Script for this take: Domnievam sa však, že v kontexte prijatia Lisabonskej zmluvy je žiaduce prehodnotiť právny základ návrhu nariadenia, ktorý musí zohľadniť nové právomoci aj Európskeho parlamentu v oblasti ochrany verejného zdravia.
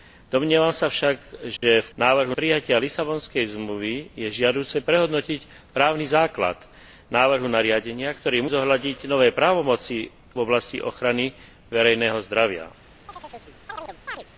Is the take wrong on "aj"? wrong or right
wrong